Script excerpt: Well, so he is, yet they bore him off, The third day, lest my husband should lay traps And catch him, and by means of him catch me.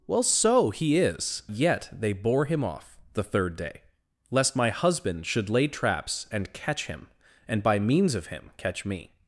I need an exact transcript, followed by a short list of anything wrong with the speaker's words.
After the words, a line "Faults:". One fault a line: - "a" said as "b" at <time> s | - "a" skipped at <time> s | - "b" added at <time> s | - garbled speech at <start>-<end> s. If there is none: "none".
Well, so he is, yet they bore him off, The third day, lest my husband should lay traps And catch him, and by means of him catch me.
Faults:
none